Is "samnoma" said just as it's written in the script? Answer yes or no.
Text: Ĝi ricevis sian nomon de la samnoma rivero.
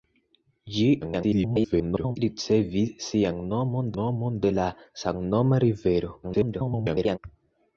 yes